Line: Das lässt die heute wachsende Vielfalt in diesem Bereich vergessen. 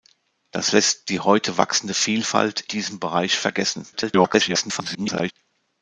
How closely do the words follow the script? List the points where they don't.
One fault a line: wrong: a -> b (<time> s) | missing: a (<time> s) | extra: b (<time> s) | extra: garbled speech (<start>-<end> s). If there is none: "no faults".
missing: in (2.6 s)
extra: garbled speech (3.9-5.3 s)